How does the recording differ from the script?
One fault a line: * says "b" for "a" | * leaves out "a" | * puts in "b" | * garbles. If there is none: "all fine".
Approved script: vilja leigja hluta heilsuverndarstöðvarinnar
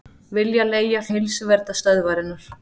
* leaves out "hluta"